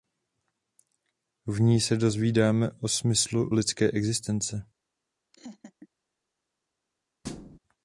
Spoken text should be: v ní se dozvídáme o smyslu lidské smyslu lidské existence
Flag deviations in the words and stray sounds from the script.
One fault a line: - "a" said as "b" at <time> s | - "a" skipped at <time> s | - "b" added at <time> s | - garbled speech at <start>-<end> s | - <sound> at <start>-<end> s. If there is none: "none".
- "smyslu lidské" skipped at 3.9 s
- laugh at 5.3-5.9 s
- thud at 7.2-7.6 s